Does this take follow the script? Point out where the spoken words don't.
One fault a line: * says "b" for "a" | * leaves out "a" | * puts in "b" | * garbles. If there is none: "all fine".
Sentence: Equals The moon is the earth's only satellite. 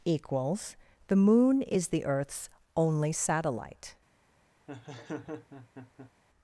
all fine